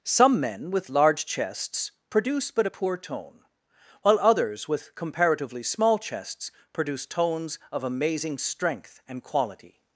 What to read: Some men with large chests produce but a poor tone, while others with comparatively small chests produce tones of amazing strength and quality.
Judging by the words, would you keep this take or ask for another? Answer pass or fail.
pass